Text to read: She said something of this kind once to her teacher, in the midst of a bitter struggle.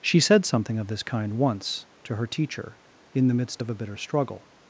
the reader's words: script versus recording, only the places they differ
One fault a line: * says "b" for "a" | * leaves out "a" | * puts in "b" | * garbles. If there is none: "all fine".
all fine